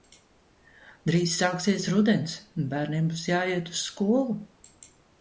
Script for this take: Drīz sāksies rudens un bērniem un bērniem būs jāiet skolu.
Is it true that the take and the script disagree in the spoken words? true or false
true